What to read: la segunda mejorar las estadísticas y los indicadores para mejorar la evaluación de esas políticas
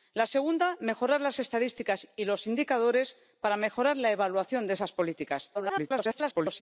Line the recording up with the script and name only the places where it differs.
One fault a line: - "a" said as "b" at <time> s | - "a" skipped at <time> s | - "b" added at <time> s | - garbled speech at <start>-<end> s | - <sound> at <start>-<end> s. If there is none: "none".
- garbled speech at 5.5-6.6 s